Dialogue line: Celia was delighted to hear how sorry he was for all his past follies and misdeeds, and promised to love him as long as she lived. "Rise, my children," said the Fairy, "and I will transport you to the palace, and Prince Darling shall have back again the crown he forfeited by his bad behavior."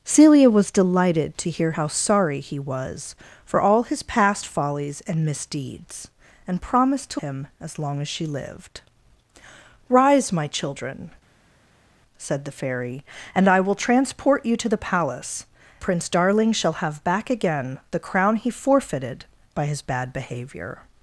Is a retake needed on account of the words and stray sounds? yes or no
yes